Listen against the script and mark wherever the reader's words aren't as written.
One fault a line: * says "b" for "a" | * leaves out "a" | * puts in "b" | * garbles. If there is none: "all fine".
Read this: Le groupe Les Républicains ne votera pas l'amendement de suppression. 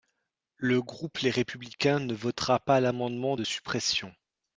all fine